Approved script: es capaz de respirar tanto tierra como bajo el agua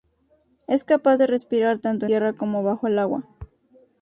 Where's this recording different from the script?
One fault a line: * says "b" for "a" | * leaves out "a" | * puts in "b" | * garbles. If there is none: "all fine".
all fine